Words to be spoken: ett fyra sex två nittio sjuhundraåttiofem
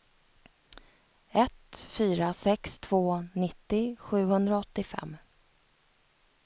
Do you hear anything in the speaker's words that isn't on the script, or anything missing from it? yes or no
no